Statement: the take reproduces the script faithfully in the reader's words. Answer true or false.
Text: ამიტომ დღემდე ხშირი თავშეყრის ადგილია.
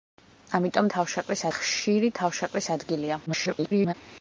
false